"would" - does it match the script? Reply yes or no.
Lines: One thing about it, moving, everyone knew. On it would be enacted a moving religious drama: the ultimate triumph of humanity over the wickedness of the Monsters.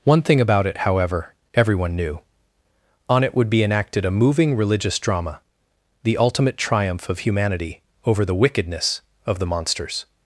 yes